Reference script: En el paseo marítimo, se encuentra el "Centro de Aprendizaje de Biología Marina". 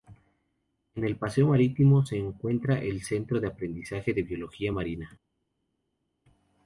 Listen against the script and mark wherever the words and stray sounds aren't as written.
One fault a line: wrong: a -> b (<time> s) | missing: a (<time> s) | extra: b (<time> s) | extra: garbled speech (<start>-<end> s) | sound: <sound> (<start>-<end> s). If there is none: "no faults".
no faults